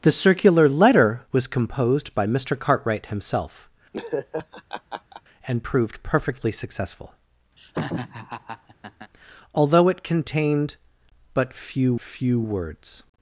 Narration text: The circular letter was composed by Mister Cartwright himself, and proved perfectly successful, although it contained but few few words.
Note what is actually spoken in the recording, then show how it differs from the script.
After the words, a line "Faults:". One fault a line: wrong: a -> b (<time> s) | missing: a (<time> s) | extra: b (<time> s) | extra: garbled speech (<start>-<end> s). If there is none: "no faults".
The circular letter was composed by Mister Cartwright himself, and proved perfectly successful, although it contained but few few words.
Faults:
no faults